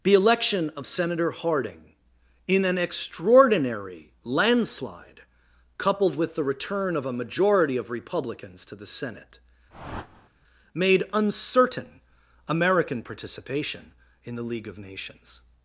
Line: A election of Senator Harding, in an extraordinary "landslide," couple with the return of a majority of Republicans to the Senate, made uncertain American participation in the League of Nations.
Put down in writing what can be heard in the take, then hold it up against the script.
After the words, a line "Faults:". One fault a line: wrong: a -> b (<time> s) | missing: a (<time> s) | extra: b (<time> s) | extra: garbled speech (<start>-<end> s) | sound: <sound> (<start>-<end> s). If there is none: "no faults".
The election of Senator Harding, in an extraordinary "landslide," coupled with the return of a majority of Republicans to the Senate, made uncertain American participation in the League of Nations.
Faults:
wrong: A -> The (0.0 s)
wrong: couple -> coupled (5.8 s)
sound: whoosh (9.7-10.3 s)